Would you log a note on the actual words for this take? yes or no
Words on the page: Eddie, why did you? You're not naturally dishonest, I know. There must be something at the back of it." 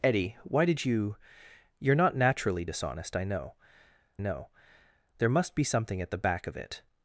yes